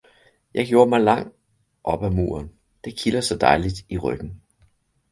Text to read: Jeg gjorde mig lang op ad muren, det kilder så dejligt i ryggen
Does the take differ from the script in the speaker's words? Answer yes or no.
no